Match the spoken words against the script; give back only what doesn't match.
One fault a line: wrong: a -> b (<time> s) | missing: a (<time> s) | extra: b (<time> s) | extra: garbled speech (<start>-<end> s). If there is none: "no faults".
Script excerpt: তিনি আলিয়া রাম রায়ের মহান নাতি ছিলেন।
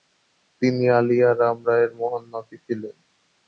no faults